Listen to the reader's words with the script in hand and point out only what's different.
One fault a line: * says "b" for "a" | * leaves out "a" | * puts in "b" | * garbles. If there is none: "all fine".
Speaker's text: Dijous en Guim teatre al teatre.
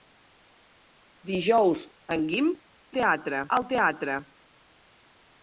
all fine